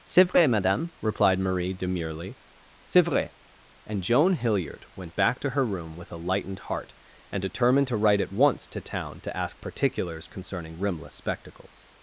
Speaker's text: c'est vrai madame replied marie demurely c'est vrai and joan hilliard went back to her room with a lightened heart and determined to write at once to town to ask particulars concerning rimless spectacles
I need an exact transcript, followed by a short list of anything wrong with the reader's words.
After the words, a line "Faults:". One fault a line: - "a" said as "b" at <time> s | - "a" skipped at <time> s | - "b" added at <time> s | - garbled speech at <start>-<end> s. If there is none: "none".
c'est vrai madame replied marie demurely c'est vrai and joan hilliard went back to her room with a lightened heart and determined to write at once to town to ask particulars concerning rimless spectacles
Faults:
none